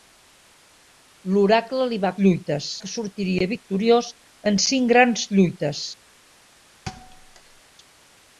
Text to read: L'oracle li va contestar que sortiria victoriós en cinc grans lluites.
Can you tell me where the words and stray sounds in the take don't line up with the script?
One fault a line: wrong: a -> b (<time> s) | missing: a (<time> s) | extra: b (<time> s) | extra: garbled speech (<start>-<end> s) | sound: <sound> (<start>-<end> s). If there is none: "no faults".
wrong: contestar -> lluites (2.2 s)
sound: thud (6.9-7.6 s)